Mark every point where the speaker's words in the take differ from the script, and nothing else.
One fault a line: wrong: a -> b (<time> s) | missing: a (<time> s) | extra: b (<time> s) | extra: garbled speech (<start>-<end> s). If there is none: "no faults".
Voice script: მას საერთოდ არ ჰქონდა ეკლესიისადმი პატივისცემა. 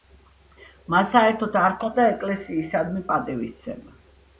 no faults